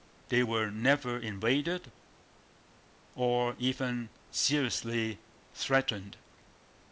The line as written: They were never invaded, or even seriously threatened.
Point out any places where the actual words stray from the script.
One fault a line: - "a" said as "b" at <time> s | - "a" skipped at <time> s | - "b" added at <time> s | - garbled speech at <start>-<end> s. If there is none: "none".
none